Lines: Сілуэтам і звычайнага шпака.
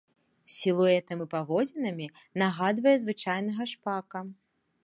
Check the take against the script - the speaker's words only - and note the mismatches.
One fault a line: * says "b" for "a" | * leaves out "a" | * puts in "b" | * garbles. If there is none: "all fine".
* puts in "паводзінамі нагадвае"